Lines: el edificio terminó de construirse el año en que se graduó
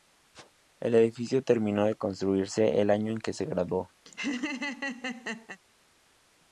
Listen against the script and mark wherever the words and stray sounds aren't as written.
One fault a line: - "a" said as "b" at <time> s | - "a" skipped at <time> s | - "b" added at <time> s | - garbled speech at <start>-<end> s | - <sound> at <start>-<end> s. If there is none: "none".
- laugh at 4.1-5.6 s